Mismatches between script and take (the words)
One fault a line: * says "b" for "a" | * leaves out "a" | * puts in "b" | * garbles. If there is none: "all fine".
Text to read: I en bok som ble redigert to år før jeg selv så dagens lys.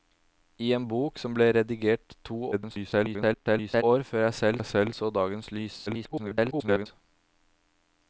* garbles
* puts in "jeg selv"
* garbles